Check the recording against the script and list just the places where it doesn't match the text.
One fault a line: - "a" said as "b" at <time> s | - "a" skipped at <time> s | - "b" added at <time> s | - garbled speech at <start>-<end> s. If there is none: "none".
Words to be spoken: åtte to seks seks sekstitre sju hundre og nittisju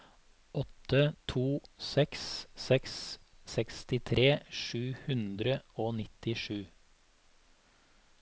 none